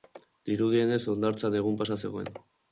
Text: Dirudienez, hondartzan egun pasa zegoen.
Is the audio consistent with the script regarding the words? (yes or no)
yes